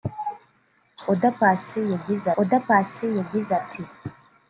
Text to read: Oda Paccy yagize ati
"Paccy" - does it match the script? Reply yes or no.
yes